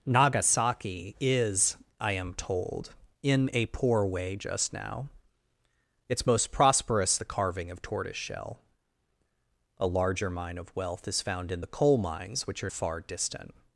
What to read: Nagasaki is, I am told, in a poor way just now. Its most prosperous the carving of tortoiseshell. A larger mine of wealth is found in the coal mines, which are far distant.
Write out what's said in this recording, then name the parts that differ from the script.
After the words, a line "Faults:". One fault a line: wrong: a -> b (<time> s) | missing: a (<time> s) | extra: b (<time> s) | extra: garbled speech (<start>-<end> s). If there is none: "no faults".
Nagasaki is, I am told, in a poor way just now. Its most prosperous the carving of tortoiseshell. A larger mine of wealth is found in the coal mines, which are far distant.
Faults:
no faults